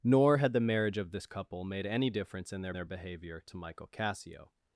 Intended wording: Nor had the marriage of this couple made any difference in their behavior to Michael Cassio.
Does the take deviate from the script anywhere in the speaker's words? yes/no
yes